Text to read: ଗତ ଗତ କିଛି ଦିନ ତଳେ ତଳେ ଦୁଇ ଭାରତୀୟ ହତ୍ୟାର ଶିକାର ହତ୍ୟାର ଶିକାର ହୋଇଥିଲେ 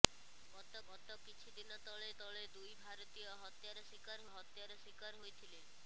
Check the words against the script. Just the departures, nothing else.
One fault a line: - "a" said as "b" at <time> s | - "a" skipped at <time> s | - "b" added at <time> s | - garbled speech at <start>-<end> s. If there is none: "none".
none